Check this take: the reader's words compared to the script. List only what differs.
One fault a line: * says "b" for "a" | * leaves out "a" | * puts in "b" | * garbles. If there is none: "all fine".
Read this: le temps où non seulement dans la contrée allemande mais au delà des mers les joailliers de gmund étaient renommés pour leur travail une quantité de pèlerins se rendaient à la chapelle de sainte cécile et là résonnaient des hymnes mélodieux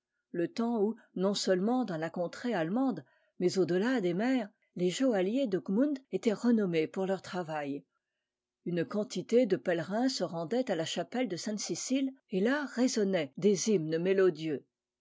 all fine